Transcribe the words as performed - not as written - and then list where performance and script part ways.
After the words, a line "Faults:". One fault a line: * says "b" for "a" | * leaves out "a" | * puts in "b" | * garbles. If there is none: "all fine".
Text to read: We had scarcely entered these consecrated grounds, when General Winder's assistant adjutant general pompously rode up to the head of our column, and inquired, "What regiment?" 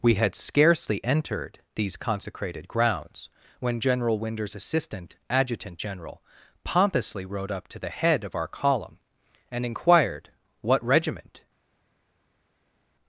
We had scarcely entered these consecrated grounds, when General Winder's assistant adjutant general pompously rode up to the head of our column, and inquired, "What regiment?"
Faults:
all fine